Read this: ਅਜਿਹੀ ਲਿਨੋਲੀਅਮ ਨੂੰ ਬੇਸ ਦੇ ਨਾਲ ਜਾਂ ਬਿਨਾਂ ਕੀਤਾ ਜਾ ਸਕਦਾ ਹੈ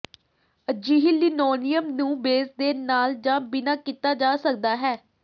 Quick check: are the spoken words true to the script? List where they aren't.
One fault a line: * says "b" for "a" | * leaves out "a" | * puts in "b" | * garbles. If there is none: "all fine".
all fine